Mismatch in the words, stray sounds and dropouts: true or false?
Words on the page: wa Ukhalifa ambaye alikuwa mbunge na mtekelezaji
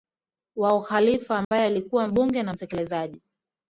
true